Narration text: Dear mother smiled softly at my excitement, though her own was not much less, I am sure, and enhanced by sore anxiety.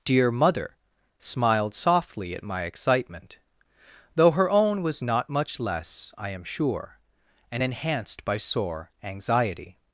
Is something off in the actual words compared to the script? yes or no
no